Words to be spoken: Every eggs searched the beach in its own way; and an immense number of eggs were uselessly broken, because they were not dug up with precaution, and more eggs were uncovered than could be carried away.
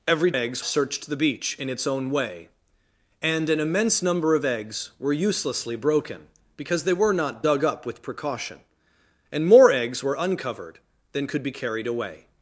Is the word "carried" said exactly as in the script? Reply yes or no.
yes